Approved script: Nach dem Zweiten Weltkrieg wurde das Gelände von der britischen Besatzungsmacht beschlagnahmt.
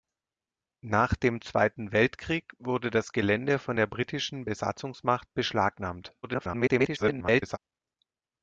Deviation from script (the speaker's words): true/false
true